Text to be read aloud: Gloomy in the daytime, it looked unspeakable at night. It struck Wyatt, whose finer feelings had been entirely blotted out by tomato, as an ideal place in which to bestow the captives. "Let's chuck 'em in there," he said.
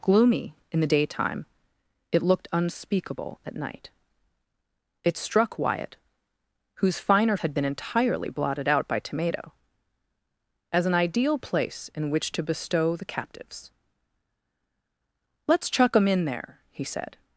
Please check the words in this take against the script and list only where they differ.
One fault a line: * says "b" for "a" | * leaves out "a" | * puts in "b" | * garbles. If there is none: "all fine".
* leaves out "feelings"